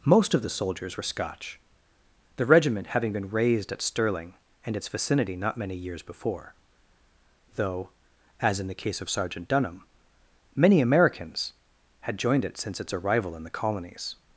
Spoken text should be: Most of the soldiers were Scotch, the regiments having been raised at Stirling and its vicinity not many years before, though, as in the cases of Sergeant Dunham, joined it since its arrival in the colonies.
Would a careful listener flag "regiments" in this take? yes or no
yes